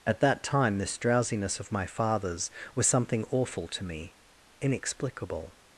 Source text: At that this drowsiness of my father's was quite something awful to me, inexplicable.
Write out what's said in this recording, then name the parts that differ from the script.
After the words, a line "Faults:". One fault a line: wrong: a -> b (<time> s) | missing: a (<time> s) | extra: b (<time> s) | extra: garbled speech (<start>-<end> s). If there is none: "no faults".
At that time, this drowsiness of my father's was something awful to me, inexplicable.
Faults:
extra: time (0.4 s)
missing: quite (2.9 s)